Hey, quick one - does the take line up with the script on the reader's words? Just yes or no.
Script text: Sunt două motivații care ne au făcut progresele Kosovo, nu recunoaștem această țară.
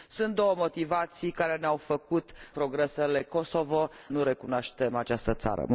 yes